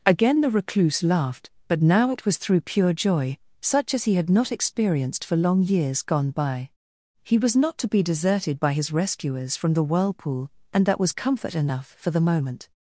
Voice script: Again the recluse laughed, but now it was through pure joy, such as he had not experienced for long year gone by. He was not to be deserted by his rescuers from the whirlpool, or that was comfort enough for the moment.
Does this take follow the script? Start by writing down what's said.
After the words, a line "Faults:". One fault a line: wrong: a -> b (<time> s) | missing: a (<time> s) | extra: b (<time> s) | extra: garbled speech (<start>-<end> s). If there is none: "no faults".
Again the recluse laughed, but now it was through pure joy, such as he had not experienced for long years gone by. He was not to be deserted by his rescuers from the whirlpool, and that was comfort enough for the moment.
Faults:
wrong: year -> years (5.6 s)
wrong: or -> and (10.7 s)